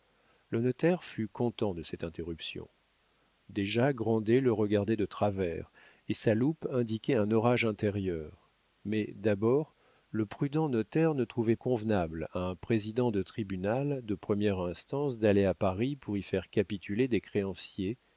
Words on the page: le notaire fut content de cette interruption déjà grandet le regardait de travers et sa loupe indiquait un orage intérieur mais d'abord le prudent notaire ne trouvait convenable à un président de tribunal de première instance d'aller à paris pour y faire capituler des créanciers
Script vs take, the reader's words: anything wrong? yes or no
no